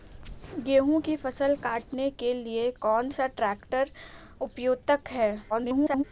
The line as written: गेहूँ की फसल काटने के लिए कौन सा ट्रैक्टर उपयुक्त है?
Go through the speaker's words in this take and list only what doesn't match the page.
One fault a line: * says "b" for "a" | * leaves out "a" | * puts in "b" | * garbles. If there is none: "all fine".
* garbles